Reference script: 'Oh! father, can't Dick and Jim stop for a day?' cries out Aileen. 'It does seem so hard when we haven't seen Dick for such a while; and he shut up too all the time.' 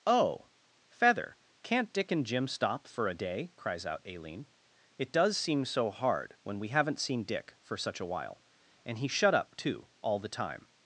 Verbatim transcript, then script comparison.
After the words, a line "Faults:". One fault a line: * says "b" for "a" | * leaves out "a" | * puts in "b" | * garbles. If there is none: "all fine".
'Oh! feather, can't Dick and Jim stop for a day?' cries out Aileen. 'It does seem so hard when we haven't seen Dick for such a while; and he shut up too all the time.'
Faults:
* says "feather" for "father"